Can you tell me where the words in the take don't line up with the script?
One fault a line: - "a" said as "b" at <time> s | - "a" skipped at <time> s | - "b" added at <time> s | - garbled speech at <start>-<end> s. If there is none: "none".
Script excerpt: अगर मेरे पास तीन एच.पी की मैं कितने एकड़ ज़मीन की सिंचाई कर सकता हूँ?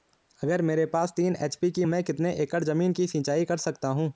none